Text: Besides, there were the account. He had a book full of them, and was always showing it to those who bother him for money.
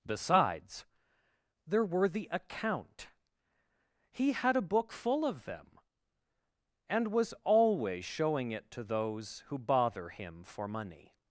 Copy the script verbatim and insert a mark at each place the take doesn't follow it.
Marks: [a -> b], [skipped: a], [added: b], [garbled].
Besides, there were the account. He had a book full of them, and was always showing it to those who bother him for money.